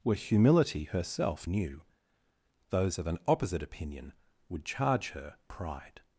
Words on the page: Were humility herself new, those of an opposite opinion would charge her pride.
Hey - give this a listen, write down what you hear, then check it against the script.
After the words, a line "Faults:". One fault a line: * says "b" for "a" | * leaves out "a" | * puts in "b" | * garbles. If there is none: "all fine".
Were humility herself new, those of an opposite opinion would charge her pride.
Faults:
all fine